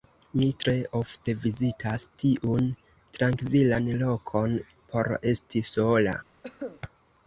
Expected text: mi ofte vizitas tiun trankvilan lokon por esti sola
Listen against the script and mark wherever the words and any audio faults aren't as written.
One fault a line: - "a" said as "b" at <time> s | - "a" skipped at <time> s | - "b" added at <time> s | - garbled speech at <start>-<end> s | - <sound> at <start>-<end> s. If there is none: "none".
- "tre" added at 0.6 s
- cough at 6.4-6.8 s